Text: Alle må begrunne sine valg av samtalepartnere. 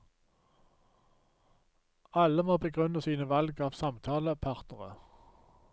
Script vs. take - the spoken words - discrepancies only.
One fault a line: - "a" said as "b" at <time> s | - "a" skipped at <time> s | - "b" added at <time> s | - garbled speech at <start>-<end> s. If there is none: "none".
none